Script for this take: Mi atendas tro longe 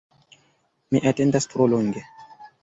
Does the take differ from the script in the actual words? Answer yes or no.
no